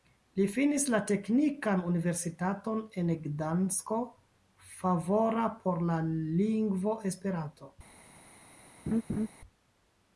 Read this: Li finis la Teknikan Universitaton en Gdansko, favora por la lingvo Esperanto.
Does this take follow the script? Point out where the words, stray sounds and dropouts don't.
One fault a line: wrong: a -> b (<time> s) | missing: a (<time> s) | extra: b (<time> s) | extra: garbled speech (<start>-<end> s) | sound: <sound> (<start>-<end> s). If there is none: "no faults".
sound: laugh (8.9-9.3 s)